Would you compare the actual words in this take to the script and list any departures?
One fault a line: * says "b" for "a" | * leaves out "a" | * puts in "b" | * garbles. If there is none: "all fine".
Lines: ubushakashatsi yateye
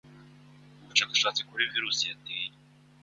* puts in "kuri virusi"